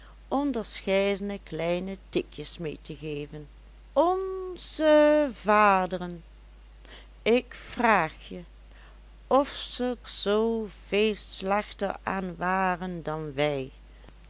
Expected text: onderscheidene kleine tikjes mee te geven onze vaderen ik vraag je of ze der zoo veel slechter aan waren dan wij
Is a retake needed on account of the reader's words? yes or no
yes